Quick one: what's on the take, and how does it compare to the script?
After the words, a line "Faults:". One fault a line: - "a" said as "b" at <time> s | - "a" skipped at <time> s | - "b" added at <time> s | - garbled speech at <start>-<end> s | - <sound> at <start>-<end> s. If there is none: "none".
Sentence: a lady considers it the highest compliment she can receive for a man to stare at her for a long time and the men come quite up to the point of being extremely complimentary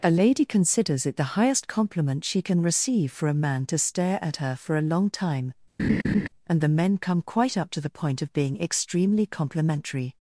a lady considers it the highest compliment she can receive for a man to stare at her for a long time and the men come quite up to the point of being extremely complimentary
Faults:
- laugh at 5.8-6.3 s